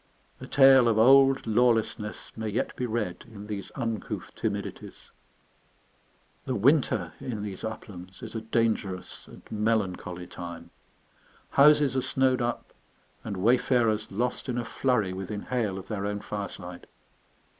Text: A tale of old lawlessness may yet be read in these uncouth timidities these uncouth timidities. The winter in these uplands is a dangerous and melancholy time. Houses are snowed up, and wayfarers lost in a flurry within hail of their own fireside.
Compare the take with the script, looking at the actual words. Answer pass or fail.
fail